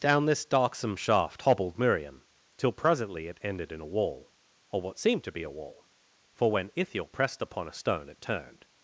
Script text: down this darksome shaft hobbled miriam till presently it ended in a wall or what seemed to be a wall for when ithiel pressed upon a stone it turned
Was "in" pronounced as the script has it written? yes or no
yes